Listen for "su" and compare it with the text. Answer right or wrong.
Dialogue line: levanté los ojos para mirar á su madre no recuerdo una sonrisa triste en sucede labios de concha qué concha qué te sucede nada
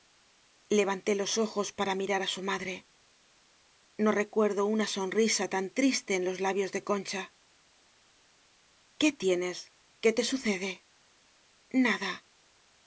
right